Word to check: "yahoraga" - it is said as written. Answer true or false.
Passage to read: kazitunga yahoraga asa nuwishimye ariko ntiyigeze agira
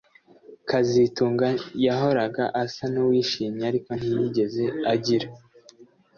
true